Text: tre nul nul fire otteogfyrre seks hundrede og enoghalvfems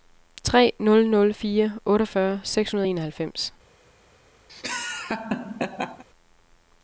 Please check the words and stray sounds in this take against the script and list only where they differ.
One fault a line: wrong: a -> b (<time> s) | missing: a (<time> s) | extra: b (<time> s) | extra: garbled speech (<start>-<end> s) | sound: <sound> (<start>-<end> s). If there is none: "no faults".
sound: laugh (4.5-6.0 s)